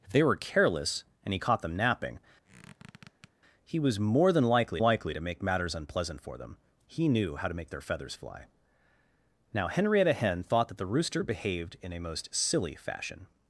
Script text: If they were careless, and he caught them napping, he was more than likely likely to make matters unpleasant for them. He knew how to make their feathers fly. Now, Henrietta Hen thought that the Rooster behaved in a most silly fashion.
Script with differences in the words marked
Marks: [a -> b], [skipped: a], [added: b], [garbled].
If they were careless, and he caught them napping, he was more than likely likely to make matters unpleasant for them. He knew how to make their feathers fly. Now, Henrietta Hen thought that the Rooster behaved in a most silly fashion.